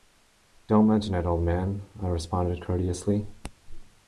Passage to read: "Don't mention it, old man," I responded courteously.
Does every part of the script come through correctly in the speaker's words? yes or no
yes